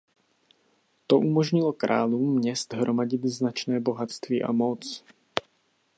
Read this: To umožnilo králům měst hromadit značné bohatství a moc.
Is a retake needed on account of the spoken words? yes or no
no